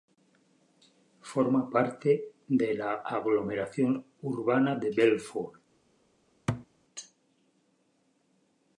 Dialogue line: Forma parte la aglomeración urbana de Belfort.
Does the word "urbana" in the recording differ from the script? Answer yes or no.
no